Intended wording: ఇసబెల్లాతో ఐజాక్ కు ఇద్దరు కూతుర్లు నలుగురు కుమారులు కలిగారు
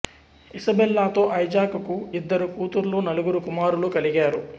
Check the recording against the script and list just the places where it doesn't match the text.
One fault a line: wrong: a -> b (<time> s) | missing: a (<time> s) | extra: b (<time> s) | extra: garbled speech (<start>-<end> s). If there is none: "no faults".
no faults